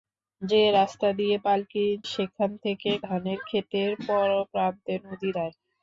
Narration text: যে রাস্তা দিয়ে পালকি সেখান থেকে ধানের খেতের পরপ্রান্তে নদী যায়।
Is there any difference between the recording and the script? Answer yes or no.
no